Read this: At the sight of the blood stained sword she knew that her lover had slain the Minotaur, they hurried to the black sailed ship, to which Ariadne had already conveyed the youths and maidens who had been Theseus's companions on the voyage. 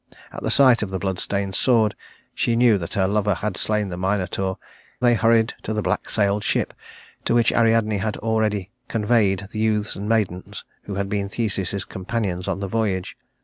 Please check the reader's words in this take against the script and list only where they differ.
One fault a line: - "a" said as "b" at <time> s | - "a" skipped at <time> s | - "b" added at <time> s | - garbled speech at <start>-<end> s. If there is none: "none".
none